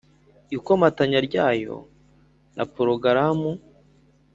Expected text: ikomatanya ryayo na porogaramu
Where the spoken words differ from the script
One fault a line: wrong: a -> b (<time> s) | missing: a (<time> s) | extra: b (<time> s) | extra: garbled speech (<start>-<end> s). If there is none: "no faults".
no faults